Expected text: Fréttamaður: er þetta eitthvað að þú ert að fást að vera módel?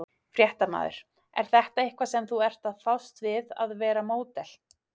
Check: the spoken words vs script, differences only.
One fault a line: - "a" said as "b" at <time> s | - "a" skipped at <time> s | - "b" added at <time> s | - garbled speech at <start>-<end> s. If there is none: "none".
- "að" said as "sem" at 2.1 s
- "við" added at 3.3 s